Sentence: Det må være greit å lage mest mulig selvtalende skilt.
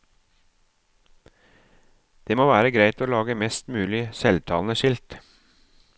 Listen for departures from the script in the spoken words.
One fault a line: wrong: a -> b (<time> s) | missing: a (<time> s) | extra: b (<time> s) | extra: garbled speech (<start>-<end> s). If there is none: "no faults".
no faults